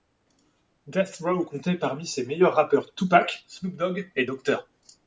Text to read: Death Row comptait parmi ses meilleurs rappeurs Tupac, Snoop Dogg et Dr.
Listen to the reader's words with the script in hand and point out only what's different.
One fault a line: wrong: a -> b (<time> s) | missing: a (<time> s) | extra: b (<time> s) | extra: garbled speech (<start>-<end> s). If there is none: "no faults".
no faults